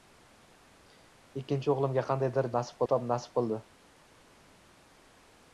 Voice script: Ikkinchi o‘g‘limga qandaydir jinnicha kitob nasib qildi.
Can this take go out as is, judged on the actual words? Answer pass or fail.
fail